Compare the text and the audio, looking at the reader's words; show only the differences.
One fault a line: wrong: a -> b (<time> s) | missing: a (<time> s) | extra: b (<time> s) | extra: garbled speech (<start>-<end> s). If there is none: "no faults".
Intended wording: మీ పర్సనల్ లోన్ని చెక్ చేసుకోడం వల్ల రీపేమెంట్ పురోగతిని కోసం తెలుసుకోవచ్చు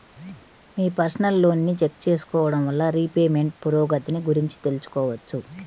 wrong: కోసం -> గురించి (4.2 s)